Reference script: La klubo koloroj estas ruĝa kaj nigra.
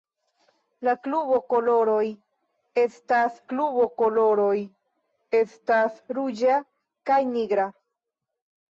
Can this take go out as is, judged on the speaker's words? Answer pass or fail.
fail